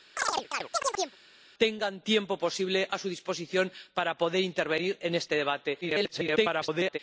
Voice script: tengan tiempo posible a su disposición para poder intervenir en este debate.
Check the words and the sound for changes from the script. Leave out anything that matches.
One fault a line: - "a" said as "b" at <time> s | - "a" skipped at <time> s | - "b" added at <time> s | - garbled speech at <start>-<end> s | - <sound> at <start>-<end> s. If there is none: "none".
- chirp at 0.2-1.2 s
- garbled speech at 5.8-7.0 s